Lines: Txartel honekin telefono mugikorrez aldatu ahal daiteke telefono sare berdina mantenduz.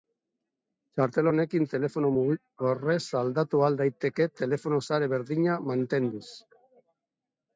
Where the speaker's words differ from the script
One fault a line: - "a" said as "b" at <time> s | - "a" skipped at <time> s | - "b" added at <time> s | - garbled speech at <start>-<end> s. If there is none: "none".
none